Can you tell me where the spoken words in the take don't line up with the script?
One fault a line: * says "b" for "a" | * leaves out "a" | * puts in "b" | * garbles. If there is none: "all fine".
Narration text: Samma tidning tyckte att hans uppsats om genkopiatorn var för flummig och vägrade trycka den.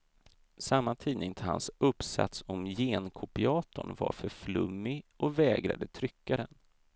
* leaves out "tyckte"